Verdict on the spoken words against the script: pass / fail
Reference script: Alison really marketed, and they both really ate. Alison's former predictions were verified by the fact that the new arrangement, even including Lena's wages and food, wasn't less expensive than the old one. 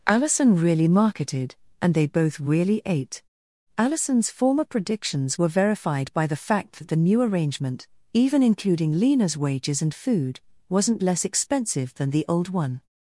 pass